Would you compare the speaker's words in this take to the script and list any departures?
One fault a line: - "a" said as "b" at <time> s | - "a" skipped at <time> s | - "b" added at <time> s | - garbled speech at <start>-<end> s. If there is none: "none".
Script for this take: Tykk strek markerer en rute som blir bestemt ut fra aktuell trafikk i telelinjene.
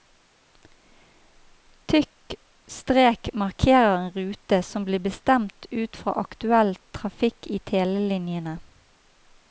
none